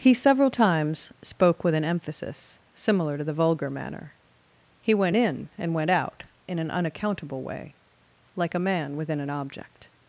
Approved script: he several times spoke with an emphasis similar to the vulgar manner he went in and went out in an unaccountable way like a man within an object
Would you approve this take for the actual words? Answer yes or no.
yes